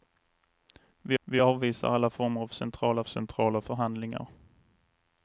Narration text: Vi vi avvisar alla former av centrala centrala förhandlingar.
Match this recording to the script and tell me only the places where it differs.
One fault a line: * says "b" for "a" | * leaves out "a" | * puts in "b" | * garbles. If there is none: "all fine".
all fine